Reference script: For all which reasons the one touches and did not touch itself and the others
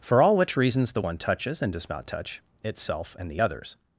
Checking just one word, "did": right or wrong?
wrong